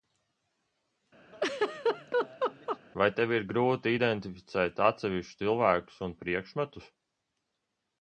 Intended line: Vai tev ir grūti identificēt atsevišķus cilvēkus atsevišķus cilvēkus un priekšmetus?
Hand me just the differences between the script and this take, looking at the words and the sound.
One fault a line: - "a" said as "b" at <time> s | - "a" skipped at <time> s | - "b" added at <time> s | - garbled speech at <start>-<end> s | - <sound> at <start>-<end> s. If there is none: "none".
- laugh at 1.3-2.8 s
- "atsevišķus cilvēkus" skipped at 6.0 s